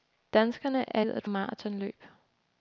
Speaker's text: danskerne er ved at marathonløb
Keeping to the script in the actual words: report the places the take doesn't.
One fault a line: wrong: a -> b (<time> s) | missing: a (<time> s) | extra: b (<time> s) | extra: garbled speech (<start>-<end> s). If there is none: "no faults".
no faults